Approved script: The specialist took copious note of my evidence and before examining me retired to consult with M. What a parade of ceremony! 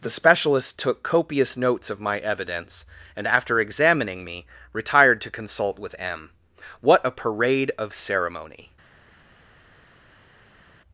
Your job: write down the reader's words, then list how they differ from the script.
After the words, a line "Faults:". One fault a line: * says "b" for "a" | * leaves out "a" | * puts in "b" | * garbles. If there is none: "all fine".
The specialist took copious notes of my evidence and after examining me retired to consult with M. What a parade of ceremony!
Faults:
* says "notes" for "note"
* says "after" for "before"